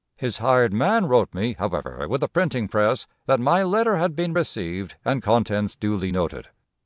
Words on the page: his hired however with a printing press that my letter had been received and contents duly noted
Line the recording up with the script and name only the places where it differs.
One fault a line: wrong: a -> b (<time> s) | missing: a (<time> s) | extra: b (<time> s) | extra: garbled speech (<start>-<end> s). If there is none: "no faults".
extra: man wrote me (0.7 s)